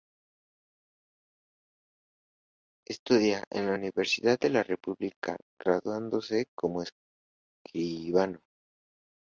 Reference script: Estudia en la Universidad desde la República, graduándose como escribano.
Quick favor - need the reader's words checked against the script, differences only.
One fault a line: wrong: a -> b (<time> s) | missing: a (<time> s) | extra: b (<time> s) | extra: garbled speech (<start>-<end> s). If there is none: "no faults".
wrong: desde -> de (4.4 s)